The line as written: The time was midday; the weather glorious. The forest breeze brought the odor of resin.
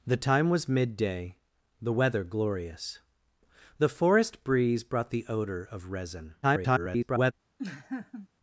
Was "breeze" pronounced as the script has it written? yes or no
yes